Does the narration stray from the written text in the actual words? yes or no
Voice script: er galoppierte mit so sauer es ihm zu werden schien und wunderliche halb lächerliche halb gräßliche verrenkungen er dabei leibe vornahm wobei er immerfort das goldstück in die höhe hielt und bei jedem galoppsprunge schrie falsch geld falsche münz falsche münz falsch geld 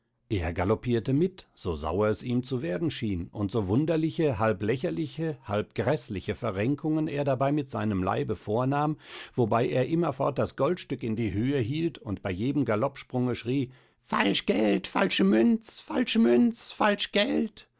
yes